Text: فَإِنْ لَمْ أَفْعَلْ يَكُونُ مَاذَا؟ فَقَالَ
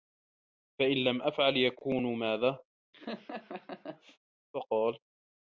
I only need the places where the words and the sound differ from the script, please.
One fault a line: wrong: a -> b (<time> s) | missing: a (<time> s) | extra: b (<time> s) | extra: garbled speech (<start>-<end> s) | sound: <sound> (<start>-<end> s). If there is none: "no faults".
sound: laugh (2.9-4.2 s)